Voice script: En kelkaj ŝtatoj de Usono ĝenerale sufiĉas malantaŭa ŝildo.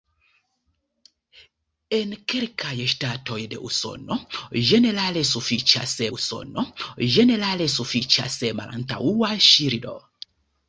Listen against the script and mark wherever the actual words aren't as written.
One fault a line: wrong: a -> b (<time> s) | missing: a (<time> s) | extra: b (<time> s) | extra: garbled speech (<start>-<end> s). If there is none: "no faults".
extra: Usono ĝenerale sufiĉas (6.2 s)